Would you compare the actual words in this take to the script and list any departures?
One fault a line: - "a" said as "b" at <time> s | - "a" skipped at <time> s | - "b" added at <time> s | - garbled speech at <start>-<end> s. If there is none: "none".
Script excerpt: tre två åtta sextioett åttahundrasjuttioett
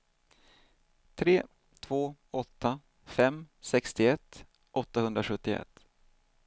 - "fem" added at 3.0 s